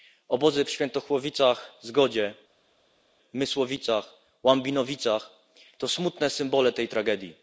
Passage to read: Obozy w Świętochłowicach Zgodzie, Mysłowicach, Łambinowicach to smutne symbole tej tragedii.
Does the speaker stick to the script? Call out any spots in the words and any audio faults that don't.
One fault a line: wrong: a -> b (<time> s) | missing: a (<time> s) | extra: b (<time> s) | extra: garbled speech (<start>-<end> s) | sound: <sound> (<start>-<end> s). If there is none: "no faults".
no faults